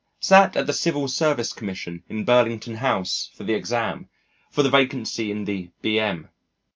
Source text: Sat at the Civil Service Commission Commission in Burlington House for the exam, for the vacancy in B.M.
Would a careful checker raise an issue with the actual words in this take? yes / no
yes